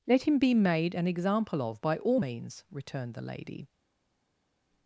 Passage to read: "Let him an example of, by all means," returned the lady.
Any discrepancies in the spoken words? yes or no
yes